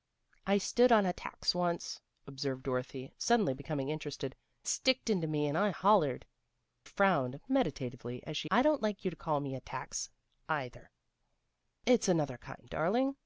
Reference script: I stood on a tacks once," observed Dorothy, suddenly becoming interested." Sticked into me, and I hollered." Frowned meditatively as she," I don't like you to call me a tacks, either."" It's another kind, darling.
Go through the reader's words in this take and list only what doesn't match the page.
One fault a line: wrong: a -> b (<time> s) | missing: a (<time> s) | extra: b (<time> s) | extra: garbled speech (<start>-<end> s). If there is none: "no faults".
no faults